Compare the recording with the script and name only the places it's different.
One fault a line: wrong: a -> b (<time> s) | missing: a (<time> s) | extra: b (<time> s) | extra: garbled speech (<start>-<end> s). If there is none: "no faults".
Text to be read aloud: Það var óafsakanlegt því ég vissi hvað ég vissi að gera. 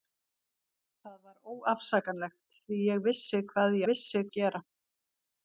no faults